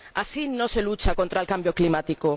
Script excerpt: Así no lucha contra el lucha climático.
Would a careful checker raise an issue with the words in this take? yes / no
yes